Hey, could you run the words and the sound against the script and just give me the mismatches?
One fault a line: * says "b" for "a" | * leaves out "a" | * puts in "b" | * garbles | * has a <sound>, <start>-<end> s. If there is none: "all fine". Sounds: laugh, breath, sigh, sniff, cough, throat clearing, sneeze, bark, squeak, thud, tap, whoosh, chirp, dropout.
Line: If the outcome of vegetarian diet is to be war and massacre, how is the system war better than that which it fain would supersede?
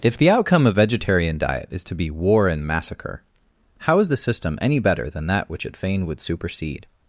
* says "any" for "war"